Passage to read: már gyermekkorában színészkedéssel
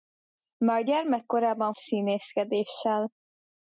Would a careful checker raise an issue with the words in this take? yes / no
no